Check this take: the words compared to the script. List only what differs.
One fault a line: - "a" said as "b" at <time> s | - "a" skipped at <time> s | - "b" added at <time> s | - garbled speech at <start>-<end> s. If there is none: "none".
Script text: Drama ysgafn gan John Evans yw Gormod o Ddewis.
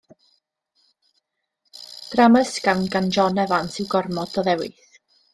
none